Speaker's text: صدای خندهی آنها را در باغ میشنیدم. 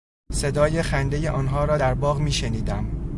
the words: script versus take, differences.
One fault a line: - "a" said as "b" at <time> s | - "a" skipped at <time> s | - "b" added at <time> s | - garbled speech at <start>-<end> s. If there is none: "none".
none